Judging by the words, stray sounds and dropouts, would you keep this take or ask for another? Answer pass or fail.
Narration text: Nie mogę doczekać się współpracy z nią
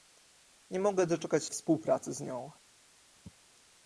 fail